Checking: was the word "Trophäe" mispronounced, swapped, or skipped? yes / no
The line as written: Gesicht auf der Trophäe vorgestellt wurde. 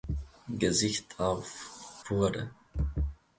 yes